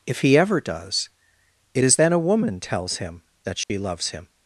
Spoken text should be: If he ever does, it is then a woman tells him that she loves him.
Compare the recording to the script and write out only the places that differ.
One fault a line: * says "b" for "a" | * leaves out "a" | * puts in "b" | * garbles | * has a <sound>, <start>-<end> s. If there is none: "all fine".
* has a dropout, 3.6-3.7 s